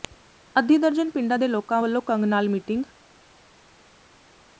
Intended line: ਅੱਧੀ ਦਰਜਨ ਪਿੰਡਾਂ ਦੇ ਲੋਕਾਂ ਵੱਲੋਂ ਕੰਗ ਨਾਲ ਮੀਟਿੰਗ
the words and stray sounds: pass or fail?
pass